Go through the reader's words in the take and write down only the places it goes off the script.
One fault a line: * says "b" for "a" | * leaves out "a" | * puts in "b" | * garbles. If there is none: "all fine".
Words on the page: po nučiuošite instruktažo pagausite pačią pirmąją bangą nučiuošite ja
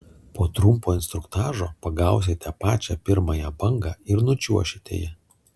* says "trumpo" for "nučiuošite"
* puts in "ir"